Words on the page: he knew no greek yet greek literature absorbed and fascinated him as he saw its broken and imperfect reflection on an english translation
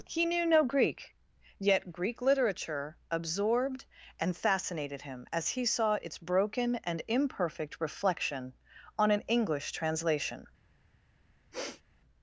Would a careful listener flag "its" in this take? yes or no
no